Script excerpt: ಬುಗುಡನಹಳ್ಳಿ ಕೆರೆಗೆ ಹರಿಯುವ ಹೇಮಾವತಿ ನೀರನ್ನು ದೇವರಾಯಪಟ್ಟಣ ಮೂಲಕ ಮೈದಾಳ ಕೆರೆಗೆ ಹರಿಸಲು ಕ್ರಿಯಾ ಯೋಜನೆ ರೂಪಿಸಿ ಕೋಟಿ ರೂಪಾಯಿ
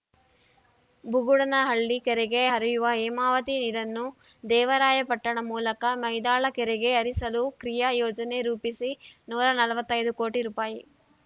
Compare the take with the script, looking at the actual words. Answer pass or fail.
fail